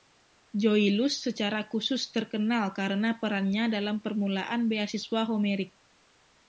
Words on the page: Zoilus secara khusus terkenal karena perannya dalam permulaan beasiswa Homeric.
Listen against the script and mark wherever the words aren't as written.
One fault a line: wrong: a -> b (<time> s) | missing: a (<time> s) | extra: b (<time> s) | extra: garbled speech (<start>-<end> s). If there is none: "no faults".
no faults